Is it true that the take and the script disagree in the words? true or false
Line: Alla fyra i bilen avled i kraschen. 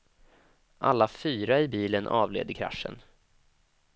false